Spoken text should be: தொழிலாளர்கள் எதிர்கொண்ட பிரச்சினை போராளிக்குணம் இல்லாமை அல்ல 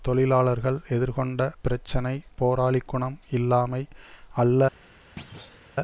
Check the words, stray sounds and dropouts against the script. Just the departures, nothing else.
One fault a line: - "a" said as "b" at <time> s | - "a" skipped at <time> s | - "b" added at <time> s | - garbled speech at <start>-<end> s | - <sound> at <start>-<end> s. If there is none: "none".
- thud at 5.2-5.7 s